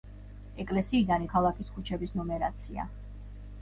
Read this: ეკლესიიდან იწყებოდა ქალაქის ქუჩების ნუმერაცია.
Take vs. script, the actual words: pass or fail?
fail